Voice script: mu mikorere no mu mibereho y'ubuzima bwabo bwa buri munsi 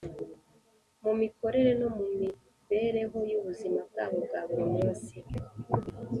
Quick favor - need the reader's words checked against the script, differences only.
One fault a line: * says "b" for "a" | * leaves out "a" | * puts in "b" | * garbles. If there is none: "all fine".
all fine